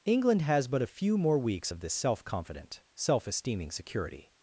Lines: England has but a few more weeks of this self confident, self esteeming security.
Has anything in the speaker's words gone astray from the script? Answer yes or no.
no